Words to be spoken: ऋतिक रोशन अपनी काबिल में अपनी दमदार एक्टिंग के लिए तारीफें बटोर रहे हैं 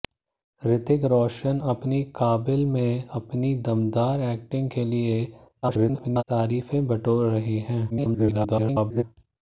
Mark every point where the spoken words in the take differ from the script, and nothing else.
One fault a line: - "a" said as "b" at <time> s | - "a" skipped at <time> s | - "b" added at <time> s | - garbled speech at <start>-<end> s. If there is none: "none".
- garbled speech at 5.6-6.2 s
- garbled speech at 7.9-9.0 s